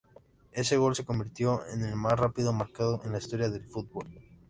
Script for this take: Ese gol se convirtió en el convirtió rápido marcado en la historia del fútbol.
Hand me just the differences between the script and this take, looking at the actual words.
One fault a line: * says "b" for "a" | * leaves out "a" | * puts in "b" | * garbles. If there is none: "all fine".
* says "más" for "convirtió"